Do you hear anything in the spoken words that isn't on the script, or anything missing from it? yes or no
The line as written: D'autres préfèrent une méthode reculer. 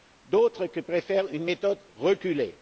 no